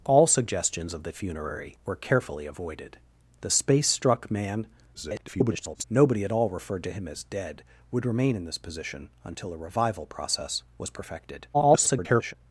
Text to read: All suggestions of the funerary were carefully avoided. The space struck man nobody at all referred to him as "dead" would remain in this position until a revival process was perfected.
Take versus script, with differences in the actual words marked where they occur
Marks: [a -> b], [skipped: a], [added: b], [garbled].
All suggestions of the funerary were carefully avoided. The space struck man [garbled] nobody at all referred to him as "dead" would remain in this position until a revival process was perfected. [garbled]